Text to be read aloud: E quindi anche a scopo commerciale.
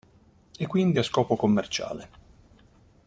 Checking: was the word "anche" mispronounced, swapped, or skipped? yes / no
yes